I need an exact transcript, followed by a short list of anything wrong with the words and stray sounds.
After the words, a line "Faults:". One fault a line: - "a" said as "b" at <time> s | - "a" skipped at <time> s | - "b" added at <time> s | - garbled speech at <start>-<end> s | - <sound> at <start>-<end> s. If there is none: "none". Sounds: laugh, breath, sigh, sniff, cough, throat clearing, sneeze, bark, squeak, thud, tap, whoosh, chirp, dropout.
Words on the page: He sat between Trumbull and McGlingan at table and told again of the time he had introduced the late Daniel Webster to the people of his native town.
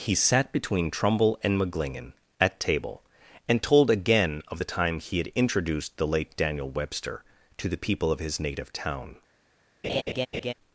He sat between Trumbull and McGlingan at table and told again of the time he had introduced the late Daniel Webster to the people of his native town.
Faults:
- laugh at 9.8-10.5 s